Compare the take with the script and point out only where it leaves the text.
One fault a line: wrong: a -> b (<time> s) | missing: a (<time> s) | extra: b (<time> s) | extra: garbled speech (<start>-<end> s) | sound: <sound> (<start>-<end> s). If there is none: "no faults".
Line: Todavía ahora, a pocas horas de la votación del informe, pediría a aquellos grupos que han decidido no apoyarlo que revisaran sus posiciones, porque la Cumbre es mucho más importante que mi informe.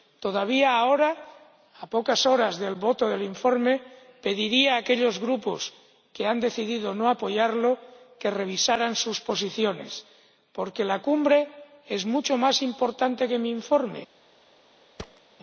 sound: thud (15.0-15.2 s)